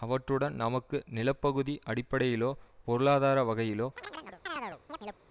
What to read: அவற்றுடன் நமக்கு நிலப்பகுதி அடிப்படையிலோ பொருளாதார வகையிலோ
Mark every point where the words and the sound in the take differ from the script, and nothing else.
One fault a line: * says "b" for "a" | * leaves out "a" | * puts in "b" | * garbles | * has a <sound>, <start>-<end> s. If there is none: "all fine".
* has a chirp, 4.0-5.2 s